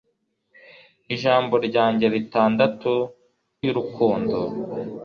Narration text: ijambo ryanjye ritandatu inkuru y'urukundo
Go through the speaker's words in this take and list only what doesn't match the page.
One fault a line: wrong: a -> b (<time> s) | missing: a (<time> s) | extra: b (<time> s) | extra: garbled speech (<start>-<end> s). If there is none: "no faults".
missing: inkuru (2.9 s)